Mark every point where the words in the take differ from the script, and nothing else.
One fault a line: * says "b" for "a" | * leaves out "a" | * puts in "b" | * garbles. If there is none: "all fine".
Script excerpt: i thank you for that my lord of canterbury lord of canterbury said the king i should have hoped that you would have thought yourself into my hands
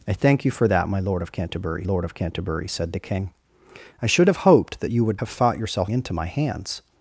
all fine